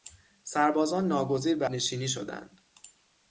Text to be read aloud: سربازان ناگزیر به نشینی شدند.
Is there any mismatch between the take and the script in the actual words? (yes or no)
no